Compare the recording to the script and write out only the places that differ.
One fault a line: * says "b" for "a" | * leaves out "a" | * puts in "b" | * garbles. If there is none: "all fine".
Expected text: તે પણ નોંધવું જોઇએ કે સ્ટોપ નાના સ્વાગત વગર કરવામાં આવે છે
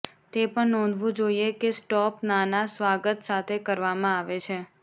* says "સાથે" for "વગર"